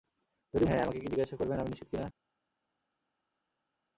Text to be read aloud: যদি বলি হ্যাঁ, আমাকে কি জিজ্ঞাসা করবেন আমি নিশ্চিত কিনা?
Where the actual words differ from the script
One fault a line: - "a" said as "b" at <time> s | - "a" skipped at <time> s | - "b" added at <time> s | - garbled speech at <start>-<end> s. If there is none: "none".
- "বলি" skipped at 0.6 s